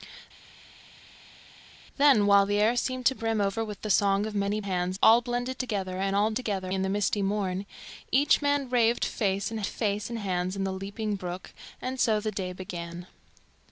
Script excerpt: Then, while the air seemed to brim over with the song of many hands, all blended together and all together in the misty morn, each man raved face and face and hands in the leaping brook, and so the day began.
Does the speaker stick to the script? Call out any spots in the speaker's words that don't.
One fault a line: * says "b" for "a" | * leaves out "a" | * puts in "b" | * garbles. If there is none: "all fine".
all fine